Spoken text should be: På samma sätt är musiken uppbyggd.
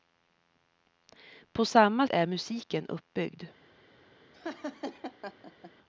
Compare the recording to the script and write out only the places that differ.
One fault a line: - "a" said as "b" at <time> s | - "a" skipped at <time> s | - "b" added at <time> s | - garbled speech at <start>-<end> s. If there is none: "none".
- "sätt" skipped at 2.1 s